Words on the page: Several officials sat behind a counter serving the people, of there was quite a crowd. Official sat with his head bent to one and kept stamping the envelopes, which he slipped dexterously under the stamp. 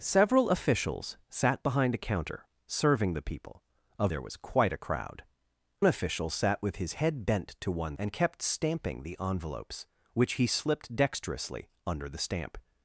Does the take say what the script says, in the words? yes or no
yes